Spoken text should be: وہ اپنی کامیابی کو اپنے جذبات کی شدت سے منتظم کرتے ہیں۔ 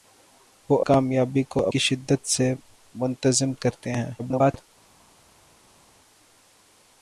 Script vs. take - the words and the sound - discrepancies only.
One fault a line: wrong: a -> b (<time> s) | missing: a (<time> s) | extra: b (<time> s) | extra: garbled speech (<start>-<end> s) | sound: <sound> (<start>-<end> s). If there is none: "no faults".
missing: اپنی (0.8 s)
missing: اپنے جذبات (1.7 s)
extra: garbled speech (4.2-4.7 s)